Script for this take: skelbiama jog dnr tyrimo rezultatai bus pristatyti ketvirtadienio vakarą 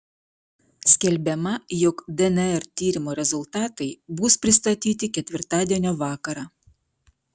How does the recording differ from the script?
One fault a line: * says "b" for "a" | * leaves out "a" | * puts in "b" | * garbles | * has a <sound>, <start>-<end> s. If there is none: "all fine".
all fine